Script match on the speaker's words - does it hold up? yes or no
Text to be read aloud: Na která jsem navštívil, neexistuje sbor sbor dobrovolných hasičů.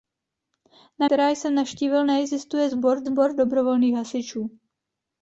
yes